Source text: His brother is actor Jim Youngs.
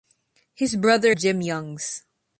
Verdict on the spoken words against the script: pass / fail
fail